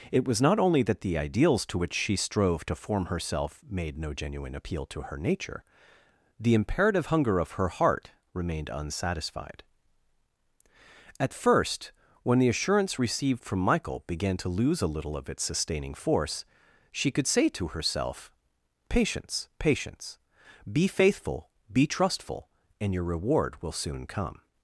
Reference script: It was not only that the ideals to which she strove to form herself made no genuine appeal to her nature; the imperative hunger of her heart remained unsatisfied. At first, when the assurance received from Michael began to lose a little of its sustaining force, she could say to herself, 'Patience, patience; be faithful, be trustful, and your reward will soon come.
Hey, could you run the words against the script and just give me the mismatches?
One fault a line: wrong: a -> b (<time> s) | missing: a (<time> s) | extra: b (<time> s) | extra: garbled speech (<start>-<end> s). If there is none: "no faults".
no faults